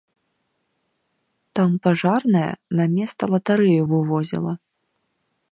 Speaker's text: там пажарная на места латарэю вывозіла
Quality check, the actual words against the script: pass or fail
pass